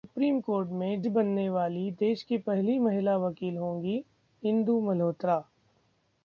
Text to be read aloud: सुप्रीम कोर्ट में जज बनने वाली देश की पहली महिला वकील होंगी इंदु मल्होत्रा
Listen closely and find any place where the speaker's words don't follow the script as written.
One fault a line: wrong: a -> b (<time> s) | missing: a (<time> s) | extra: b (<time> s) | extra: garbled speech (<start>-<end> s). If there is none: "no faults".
missing: जज (1.0 s)